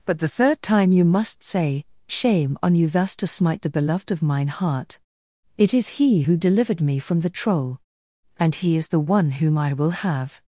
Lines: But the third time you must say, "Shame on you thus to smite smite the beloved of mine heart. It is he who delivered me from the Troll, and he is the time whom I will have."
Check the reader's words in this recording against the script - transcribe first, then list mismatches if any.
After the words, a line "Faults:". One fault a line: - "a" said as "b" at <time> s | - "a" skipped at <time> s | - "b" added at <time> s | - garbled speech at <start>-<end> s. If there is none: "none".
But the third time you must say, "Shame on you thus to smite the beloved of mine heart. It is he who delivered me from the Troll, and he is the one whom I will have."
Faults:
- "smite" skipped at 3.6 s
- "time" said as "one" at 9.0 s